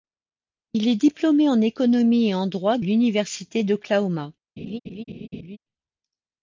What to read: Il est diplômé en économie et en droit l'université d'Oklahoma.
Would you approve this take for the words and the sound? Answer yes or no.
no